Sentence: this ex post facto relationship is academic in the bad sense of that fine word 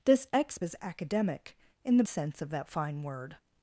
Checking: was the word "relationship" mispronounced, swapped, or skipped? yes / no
yes